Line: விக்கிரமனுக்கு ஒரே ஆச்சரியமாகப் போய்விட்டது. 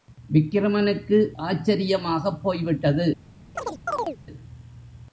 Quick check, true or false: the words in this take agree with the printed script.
false